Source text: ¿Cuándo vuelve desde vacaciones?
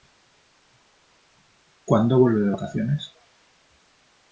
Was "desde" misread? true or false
true